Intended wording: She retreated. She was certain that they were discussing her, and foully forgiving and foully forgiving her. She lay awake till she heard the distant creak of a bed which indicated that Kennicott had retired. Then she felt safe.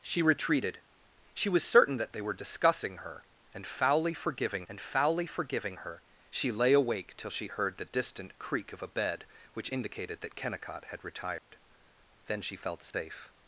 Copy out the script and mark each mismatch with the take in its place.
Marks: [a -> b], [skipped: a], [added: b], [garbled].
She retreated. She was certain that they were discussing her, and foully forgiving and foully forgiving her. She lay awake till she heard the distant creak of a bed which indicated that Kennicott had retired. Then she felt safe.